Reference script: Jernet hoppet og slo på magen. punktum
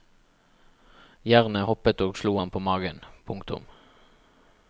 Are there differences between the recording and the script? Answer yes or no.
yes